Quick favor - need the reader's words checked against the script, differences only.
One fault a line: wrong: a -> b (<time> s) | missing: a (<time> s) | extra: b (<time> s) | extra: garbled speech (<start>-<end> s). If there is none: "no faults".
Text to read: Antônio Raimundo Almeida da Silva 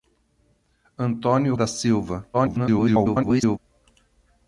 missing: Raimundo Almeida (1.5 s)
extra: garbled speech (2.3-3.6 s)